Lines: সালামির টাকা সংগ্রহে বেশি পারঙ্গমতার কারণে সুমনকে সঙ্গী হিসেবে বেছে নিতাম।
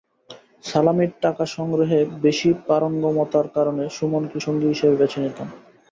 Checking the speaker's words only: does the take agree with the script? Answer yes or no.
yes